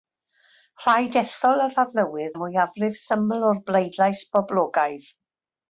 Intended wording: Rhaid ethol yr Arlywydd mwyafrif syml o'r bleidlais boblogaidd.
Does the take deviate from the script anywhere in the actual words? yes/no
no